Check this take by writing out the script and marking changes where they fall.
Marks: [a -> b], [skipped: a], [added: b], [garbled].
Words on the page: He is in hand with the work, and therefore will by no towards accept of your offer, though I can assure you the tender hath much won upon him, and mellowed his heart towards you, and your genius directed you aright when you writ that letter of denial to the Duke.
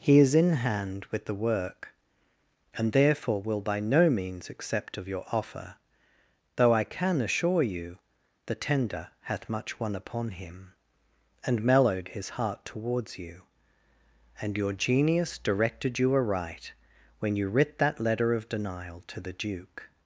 He is in hand with the work, and therefore will by no [towards -> means] accept of your offer, though I can assure you the tender hath much won upon him, and mellowed his heart towards you, and your genius directed you aright when you writ that letter of denial to the Duke.